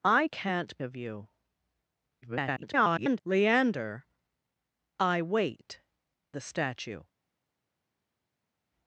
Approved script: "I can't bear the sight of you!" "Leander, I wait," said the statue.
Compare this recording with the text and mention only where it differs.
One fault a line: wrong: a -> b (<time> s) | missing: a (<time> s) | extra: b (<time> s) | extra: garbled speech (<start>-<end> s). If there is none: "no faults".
missing: bear the sight (0.8 s)
extra: garbled speech (2.2-3.2 s)
missing: said (5.8 s)